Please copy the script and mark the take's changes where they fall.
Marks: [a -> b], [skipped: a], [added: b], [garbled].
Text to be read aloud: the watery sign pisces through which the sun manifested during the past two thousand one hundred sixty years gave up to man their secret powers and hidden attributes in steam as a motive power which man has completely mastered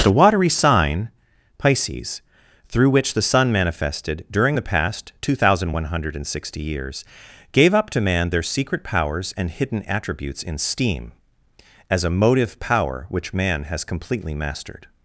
the watery sign pisces through which the sun manifested during the past two thousand one hundred sixty years gave up to man their secret powers and hidden attributes in steam as a motive power which man has completely mastered